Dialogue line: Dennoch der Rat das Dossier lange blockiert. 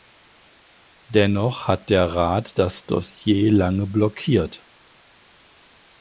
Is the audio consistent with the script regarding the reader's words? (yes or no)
no